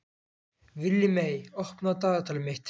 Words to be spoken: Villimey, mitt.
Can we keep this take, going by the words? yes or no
no